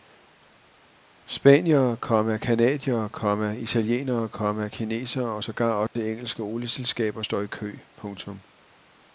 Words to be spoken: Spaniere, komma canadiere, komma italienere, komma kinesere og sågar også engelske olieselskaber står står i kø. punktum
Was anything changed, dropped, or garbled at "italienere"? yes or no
no